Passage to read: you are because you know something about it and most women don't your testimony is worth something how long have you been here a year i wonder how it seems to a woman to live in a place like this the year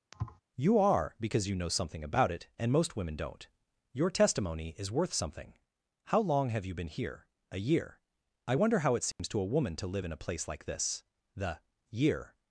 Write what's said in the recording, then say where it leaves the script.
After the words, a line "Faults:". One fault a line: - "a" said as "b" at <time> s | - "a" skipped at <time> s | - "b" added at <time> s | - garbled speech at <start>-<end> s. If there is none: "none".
you are because you know something about it and most women don't your testimony is worth something how long have you been here a year i wonder how it seems to a woman to live in a place like this the year
Faults:
none